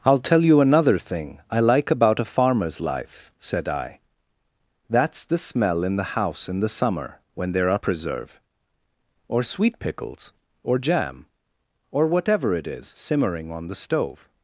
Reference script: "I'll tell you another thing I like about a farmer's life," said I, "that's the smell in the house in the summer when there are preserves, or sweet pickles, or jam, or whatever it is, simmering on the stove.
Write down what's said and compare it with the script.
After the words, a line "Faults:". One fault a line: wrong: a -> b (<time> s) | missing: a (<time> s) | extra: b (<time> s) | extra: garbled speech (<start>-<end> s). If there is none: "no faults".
"I'll tell you another thing I like about a farmer's life," said I, "that's the smell in the house in the summer when there are preserve, or sweet pickles, or jam, or whatever it is, simmering on the stove.
Faults:
wrong: preserves -> preserve (7.8 s)